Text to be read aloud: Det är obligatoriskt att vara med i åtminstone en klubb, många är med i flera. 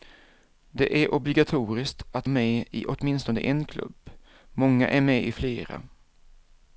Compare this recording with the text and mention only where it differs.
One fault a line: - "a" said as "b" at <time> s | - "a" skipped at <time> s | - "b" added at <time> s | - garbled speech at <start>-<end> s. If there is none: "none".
- "vara" skipped at 2.3 s